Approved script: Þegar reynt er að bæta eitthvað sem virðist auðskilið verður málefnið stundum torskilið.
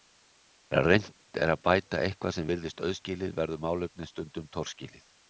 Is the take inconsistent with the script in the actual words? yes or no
no